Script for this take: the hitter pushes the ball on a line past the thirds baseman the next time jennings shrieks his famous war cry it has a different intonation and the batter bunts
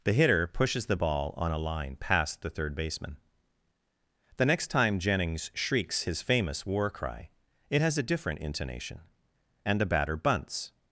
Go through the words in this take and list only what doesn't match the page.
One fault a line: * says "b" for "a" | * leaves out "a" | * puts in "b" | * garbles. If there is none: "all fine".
* says "third" for "thirds"